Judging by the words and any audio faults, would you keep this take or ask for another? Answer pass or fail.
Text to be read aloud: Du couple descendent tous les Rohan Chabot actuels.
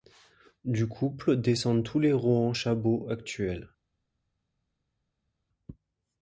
pass